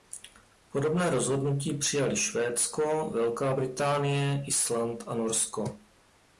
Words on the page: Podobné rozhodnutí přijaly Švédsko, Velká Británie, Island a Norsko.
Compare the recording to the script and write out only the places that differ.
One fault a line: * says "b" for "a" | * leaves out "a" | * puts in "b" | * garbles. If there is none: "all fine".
all fine